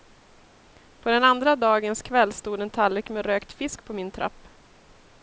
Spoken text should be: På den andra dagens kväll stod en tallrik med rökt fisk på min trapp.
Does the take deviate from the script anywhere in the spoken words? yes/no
no